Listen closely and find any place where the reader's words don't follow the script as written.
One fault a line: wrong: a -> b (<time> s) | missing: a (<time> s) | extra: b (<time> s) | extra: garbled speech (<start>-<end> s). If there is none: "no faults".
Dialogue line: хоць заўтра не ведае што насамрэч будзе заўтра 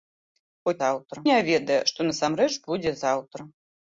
no faults